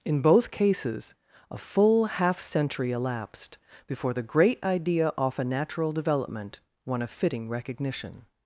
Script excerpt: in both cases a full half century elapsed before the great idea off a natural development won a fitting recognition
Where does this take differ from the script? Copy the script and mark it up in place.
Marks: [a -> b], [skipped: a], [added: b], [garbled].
in both cases a full half century elapsed before the great idea off a natural development won a fitting recognition